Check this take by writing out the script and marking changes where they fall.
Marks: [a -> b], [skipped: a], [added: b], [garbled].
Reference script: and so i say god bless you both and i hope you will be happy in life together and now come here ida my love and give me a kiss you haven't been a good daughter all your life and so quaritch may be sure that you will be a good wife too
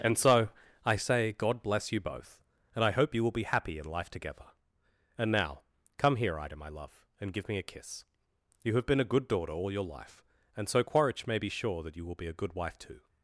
and so i say god bless you both and i hope you will be happy in life together and now come here ida my love and give me a kiss you [haven't -> have] been a good daughter all your life and so quaritch may be sure that you will be a good wife too